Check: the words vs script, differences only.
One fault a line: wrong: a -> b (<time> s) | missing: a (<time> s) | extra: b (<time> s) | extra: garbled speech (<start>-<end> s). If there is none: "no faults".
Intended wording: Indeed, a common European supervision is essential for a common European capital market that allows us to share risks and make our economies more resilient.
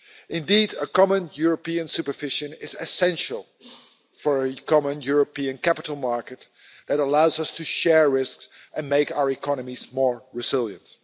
no faults